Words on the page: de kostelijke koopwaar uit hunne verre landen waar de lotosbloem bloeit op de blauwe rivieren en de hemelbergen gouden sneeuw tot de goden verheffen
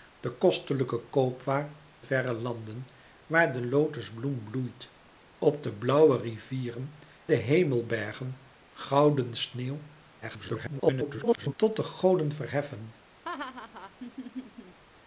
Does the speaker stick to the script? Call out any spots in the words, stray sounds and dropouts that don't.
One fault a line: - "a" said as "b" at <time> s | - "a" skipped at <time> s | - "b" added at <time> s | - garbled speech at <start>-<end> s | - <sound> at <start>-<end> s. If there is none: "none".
- "uit hunne" skipped at 1.8 s
- "en" skipped at 7.0 s
- garbled speech at 10.2-11.5 s
- laugh at 13.2-14.8 s